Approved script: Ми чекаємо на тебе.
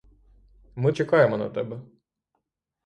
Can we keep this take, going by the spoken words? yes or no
yes